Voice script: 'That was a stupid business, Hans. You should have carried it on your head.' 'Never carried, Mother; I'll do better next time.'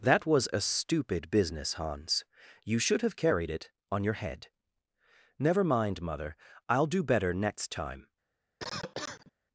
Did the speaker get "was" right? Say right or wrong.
right